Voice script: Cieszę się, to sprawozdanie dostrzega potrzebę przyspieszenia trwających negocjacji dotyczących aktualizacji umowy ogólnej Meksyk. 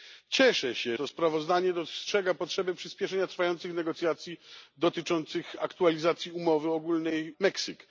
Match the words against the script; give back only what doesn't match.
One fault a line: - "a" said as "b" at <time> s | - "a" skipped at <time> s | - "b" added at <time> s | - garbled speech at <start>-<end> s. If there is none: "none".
none